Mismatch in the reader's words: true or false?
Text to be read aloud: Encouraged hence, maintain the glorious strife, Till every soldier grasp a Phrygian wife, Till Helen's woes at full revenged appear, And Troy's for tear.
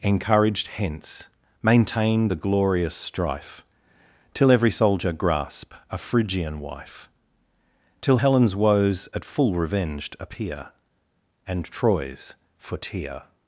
false